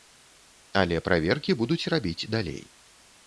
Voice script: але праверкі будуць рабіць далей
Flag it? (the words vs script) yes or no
no